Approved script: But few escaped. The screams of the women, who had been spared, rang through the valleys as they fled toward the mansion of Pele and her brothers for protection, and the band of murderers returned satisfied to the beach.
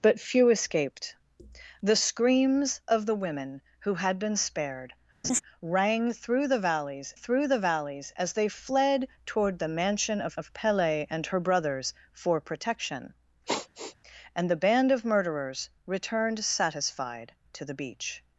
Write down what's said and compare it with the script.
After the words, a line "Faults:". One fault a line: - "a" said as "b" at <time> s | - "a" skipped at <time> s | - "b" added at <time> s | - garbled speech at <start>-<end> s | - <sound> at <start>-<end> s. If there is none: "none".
But few escaped. The screams of the women, who had been spared, rang through the valleys through the valleys as they fled toward the mansion of of Pele and her brothers for protection, and the band of murderers returned satisfied to the beach.
Faults:
- laugh at 5.2-5.4 s
- "through the valleys" added at 7.1 s
- "of" added at 10.4 s
- sigh at 13.5-14.0 s